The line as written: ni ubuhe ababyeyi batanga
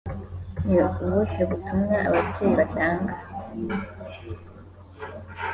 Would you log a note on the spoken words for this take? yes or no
yes